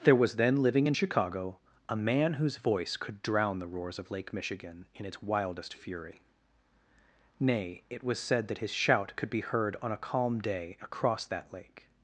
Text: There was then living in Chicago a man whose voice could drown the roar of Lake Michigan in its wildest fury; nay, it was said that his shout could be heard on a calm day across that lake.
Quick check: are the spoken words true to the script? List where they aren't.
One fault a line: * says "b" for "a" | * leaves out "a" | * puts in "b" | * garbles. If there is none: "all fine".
* says "roars" for "roar"